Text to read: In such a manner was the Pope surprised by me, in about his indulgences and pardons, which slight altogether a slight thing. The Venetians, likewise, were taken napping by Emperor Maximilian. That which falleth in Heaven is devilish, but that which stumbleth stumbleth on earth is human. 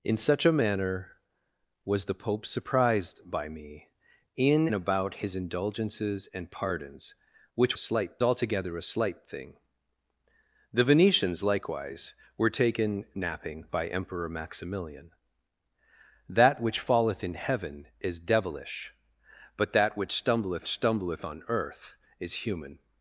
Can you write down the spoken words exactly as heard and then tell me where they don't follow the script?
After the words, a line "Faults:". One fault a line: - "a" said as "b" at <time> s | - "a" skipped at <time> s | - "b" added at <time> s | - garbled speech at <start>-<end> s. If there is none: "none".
In such a manner was the Pope surprised by me, in about his indulgences and pardons, which slight altogether a slight thing. The Venetians, likewise, were taken napping by Emperor Maximilian. That which falleth in Heaven is devilish, but that which stumbleth stumbleth on earth is human.
Faults:
none